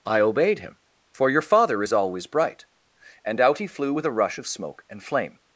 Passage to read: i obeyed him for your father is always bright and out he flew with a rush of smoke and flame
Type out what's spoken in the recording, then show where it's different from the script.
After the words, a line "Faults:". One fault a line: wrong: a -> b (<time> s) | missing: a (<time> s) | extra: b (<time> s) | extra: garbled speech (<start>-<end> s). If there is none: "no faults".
i obeyed him for your father is always bright and out he flew with a rush of smoke and flame
Faults:
no faults